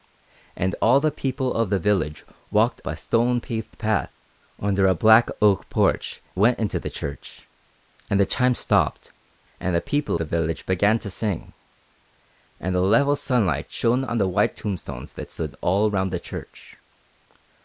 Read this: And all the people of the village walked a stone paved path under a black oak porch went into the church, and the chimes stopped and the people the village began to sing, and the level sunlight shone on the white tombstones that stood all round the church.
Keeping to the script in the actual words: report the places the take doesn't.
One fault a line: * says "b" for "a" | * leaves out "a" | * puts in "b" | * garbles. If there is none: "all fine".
all fine